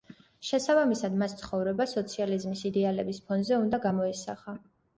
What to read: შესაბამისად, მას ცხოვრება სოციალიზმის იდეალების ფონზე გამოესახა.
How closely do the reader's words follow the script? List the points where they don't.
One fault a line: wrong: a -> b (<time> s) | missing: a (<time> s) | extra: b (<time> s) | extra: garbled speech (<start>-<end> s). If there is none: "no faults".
extra: უნდა (3.7 s)